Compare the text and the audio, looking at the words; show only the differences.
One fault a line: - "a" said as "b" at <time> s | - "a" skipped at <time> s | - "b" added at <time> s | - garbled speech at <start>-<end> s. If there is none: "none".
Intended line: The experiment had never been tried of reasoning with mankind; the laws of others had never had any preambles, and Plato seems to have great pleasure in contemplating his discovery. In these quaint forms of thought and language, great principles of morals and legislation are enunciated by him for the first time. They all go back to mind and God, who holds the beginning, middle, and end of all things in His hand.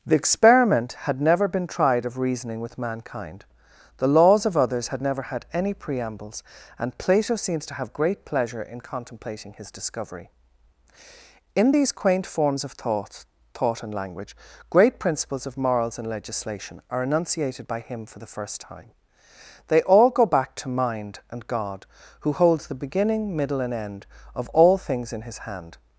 - "thought" added at 13.5 s